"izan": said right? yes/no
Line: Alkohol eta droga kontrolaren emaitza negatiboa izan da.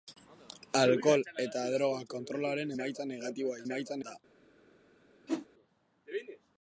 no